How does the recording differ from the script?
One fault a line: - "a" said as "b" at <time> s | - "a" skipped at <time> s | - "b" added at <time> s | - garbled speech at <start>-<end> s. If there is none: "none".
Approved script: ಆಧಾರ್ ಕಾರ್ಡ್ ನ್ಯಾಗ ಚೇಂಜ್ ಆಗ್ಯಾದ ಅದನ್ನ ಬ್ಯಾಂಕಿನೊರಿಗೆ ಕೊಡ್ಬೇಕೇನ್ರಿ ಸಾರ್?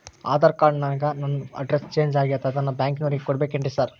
- "ನನ್ ಅಡ್ರೆಸ್" added at 1.1 s